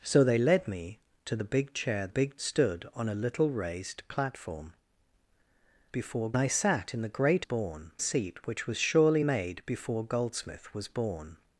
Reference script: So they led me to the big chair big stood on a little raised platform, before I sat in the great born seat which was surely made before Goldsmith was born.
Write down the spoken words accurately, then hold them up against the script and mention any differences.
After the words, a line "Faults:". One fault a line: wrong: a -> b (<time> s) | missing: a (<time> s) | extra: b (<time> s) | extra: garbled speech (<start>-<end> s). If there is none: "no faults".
So they led me to the big chair big stood on a little raised platform, before I sat in the great born seat which was surely made before Goldsmith was born.
Faults:
no faults